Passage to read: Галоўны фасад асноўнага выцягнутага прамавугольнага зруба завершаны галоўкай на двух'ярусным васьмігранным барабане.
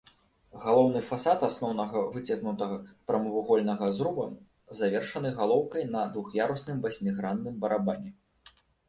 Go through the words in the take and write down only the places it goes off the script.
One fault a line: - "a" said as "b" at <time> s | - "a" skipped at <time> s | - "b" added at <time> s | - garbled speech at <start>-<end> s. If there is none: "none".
none